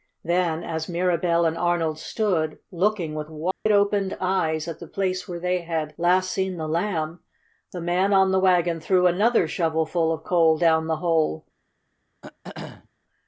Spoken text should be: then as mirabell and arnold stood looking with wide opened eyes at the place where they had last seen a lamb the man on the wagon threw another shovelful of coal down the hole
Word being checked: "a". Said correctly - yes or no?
no